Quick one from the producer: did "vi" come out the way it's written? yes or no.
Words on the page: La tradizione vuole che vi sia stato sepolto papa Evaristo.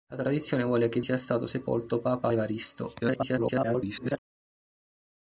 no